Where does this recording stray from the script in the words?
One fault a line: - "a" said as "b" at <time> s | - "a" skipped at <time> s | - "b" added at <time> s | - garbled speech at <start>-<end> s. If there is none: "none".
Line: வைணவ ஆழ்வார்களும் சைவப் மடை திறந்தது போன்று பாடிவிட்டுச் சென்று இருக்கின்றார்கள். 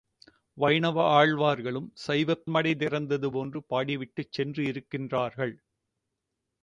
none